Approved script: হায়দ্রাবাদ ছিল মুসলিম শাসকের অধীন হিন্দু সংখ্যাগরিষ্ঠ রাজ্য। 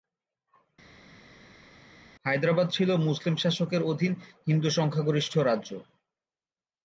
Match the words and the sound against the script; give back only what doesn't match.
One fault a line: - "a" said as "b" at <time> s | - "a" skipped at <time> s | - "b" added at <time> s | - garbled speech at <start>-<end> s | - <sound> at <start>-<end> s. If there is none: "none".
none